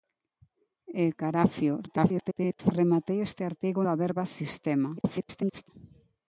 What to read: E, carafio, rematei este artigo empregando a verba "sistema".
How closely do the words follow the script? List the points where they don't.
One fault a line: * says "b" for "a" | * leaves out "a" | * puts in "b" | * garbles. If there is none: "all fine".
* garbles
* leaves out "empregando"
* garbles